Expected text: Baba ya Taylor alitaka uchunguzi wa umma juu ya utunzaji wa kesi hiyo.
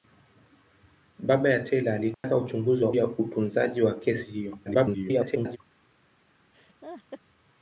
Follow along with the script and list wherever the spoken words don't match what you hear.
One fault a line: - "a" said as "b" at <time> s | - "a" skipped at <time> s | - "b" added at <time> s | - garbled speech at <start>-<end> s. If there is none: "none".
- "umma juu" skipped at 2.9 s
- garbled speech at 4.6-5.6 s